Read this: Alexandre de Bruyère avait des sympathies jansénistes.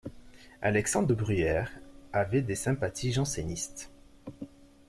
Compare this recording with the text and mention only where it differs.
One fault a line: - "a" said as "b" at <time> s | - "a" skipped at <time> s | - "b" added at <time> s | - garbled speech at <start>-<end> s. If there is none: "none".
none